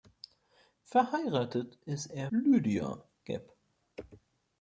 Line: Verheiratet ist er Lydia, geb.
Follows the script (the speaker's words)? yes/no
yes